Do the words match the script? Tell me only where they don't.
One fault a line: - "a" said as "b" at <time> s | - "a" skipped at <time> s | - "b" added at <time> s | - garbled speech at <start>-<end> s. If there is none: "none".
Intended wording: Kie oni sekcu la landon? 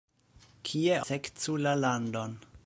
- "oni" skipped at 1.0 s